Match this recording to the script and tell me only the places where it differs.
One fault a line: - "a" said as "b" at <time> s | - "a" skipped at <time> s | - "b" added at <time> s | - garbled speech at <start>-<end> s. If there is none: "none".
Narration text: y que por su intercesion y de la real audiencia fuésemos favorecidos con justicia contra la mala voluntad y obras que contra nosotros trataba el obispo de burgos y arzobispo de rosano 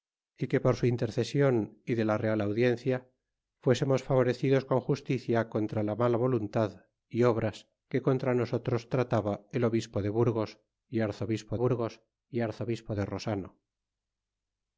- "burgos y arzobispo" added at 11.5 s